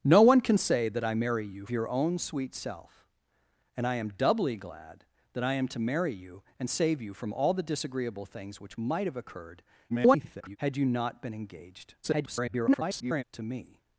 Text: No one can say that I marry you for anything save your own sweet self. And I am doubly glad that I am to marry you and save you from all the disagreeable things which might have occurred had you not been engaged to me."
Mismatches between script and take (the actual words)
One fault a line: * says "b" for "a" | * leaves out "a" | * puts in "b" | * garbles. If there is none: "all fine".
* leaves out "for anything save"
* garbles
* garbles